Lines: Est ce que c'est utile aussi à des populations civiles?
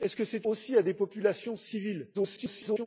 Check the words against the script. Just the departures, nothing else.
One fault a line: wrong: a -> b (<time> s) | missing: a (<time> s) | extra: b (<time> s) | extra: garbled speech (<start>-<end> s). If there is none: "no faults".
missing: utile (0.5 s)
extra: garbled speech (2.1-2.9 s)